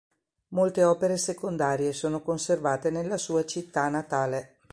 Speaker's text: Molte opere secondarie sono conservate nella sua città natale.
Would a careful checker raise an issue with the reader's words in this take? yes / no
no